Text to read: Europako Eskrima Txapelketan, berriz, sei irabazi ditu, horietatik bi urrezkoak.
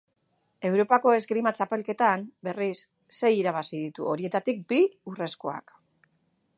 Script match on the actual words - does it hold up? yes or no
yes